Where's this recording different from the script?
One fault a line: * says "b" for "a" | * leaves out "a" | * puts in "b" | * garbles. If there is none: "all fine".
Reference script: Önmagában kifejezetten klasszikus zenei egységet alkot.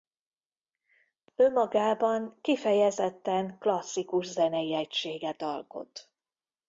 all fine